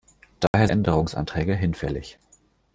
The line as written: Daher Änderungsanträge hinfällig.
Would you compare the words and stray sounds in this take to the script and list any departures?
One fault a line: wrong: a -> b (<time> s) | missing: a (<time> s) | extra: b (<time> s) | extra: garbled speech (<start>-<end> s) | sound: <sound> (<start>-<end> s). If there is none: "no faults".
sound: dropout (0.5-0.5 s)